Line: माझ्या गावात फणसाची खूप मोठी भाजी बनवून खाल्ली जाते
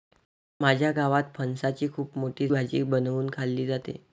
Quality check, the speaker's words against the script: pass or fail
pass